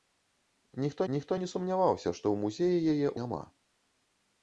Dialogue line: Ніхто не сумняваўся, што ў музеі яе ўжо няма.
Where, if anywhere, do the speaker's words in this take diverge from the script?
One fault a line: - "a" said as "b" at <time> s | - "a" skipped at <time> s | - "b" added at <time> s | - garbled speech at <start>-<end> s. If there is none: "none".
- "ніхто" added at 1.1 s
- "ўжо" skipped at 3.1 s